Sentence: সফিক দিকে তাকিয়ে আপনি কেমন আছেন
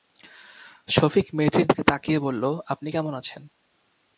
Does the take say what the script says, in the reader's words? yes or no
no